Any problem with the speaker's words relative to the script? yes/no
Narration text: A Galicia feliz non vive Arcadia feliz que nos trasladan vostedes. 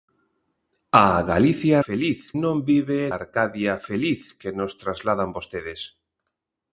no